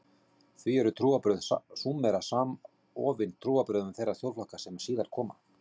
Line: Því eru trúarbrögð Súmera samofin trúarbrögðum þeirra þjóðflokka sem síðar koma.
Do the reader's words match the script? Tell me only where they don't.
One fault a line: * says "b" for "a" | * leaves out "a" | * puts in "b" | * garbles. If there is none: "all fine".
all fine